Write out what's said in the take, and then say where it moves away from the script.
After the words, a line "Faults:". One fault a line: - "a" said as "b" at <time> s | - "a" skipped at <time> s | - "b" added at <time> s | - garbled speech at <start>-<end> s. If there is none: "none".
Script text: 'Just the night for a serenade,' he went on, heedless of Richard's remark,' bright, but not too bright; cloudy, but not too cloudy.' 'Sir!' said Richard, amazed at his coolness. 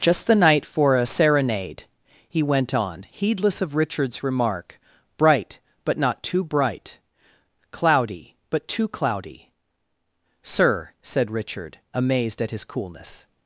'Just the night for a serenade,' he went on, heedless of Richard's remark,' bright, but not too bright; cloudy, but too cloudy.' 'Sir!' said Richard, amazed at his coolness.
Faults:
- "not" skipped at 8.7 s